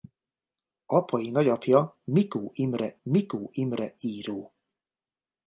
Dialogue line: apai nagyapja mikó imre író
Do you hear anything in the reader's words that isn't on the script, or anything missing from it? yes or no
yes